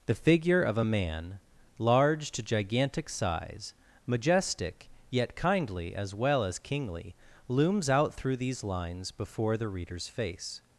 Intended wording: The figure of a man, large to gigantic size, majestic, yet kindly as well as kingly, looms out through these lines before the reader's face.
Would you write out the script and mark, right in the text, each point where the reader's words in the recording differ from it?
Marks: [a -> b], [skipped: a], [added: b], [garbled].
The figure of a man, large to gigantic size, majestic, yet kindly as well as kingly, looms out through these lines before the reader's face.